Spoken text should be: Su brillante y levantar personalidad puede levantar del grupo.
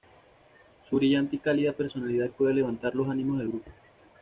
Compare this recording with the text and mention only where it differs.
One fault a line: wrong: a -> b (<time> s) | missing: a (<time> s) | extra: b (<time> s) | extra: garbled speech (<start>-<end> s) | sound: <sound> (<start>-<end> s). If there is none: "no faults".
wrong: levantar -> cálida (1.4 s)
extra: los ánimos (2.9 s)